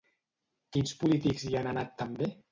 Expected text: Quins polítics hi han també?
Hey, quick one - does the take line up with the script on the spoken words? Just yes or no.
no